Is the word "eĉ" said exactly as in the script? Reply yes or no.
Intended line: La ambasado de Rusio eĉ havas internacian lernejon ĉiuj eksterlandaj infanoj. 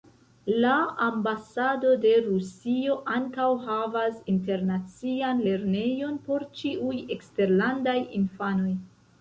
no